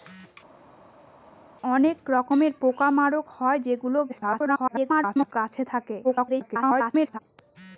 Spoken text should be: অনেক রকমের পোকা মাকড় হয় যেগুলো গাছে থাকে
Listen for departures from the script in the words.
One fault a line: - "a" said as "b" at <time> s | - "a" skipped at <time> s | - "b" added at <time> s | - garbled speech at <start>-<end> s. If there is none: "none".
- garbled speech at 4.1-5.3 s
- garbled speech at 6.0-7.2 s